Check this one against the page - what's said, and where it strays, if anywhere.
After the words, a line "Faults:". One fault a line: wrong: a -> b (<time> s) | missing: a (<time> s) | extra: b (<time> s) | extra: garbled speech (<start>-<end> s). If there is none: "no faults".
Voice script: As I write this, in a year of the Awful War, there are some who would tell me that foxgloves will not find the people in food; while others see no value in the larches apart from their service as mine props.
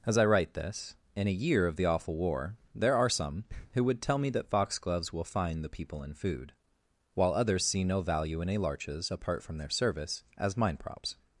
As I write this, in a year of the Awful War, there are some who would tell me that foxgloves will find the people in food; while others see no value in a larches apart from their service as mine props.
Faults:
missing: not (5.2 s)
wrong: the -> a (8.5 s)